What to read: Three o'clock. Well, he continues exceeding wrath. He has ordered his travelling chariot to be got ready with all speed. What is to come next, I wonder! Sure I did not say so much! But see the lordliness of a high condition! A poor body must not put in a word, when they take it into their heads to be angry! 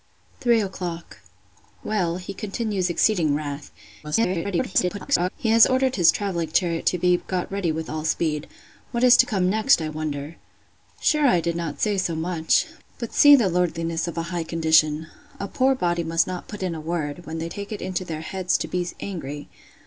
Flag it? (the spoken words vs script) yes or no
yes